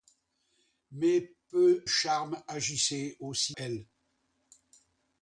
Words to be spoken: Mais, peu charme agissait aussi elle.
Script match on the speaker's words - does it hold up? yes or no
yes